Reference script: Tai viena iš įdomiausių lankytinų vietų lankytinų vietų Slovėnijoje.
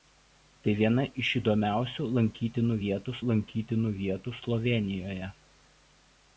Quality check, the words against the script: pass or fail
pass